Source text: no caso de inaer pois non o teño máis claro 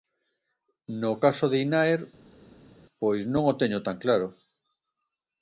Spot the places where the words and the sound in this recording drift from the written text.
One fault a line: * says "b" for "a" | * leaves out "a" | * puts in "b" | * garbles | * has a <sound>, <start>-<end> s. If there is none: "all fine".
* says "tan" for "máis"